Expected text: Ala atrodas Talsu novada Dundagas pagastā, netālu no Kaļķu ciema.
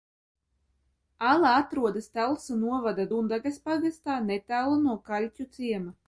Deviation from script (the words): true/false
false